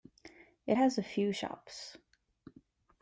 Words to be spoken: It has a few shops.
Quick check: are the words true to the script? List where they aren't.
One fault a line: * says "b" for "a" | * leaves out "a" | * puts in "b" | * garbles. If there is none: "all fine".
all fine